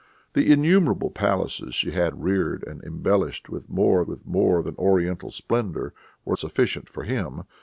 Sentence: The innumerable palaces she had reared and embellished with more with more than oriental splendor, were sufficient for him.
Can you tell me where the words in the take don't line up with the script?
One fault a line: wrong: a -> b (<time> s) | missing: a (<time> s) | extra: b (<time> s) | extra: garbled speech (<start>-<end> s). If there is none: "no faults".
no faults